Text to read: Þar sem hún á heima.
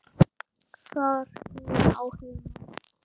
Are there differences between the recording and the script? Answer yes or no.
yes